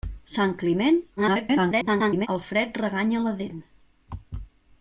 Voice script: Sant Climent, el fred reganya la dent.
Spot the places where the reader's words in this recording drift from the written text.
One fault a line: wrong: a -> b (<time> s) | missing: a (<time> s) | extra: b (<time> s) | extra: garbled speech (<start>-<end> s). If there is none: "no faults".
extra: garbled speech (1.2-2.3 s)